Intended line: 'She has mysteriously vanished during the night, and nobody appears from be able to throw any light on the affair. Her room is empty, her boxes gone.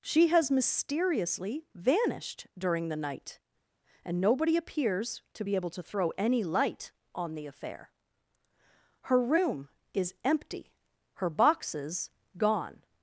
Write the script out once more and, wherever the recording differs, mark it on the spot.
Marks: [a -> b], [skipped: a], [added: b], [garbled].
'She has mysteriously vanished during the night, and nobody appears [from -> to] be able to throw any light on the affair. Her room is empty, her boxes gone.